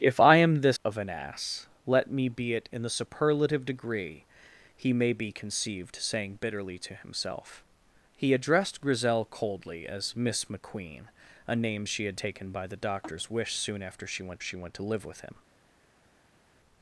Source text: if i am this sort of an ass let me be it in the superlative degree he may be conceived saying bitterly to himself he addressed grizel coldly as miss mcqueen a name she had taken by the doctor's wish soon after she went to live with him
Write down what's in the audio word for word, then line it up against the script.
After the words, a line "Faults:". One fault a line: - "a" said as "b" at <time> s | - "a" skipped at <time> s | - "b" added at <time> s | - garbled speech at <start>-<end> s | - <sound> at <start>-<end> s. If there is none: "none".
if i am this of an ass let me be it in the superlative degree he may be conceived saying bitterly to himself he addressed grizel coldly as miss mcqueen a name she had taken by the doctor's wish soon after she went she went to live with him
Faults:
- "sort" skipped at 0.8 s
- "she went" added at 14.4 s